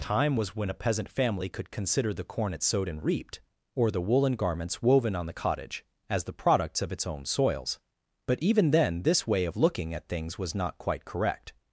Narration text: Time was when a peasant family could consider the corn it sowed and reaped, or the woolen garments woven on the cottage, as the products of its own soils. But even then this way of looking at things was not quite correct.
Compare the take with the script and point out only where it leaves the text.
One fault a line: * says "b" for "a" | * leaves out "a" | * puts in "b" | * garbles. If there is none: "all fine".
all fine